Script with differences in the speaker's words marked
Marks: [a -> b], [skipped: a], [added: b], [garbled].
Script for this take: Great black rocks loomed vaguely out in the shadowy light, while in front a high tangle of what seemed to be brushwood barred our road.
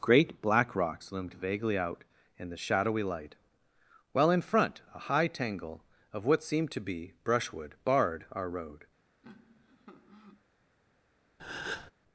Great black rocks loomed vaguely out in the shadowy light, while in front a high tangle of what seemed to be brushwood barred our road.